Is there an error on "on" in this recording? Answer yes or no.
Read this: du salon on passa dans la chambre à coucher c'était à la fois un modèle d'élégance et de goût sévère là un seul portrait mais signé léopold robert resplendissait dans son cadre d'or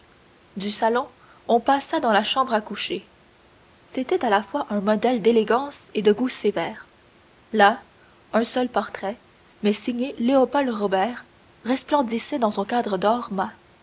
no